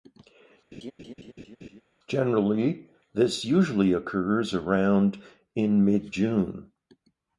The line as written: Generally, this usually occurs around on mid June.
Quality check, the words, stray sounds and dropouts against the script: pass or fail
fail